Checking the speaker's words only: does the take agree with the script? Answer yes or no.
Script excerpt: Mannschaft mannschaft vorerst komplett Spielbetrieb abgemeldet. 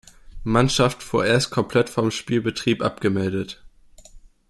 no